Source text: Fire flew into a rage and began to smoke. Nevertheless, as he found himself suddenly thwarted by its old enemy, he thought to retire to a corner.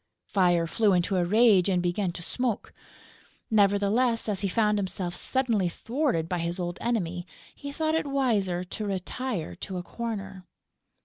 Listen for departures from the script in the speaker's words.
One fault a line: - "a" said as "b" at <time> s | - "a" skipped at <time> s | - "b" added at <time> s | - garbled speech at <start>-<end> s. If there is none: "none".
- "its" said as "his" at 6.4 s
- "it wiser" added at 7.9 s